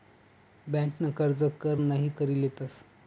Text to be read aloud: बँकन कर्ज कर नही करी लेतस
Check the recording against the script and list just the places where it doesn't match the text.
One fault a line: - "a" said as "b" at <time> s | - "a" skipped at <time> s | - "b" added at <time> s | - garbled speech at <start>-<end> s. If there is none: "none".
none